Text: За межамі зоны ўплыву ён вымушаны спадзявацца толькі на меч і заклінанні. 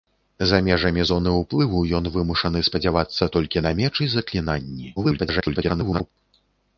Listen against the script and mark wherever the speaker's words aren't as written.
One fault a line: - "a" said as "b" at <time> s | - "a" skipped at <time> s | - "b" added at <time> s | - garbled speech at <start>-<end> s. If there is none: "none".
- garbled speech at 5.0-6.1 s